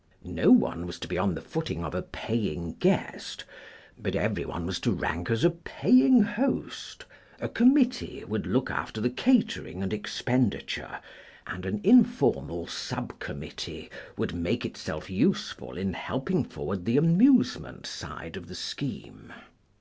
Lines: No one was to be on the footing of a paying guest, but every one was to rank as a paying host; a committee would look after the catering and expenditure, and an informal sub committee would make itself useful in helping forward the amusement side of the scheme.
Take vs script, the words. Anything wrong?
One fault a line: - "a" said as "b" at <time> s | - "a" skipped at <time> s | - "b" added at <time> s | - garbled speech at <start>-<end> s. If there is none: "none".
none